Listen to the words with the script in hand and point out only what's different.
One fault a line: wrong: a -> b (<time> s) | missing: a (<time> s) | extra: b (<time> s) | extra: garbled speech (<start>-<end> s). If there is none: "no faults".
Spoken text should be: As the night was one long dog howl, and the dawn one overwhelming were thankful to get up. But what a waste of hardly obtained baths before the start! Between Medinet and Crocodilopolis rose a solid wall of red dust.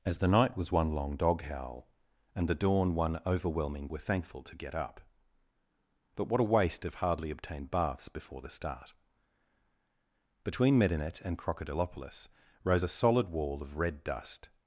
no faults